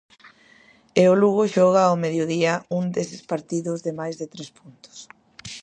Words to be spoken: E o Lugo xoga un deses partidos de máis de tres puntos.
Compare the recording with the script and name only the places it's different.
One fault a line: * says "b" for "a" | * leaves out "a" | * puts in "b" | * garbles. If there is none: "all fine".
* puts in "ao mediodía"